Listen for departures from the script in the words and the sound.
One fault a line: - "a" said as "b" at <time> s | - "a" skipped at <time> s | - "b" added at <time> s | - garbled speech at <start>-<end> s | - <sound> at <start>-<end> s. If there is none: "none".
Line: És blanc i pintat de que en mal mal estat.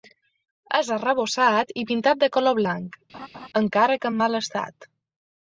- "blanc" said as "arrebossat" at 0.9 s
- "color blanc encara" added at 2.4 s
- laugh at 3.1-3.5 s
- "mal" skipped at 4.4 s